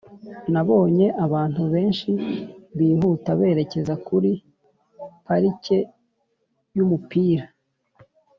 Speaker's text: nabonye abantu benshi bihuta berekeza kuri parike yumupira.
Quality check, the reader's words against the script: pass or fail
pass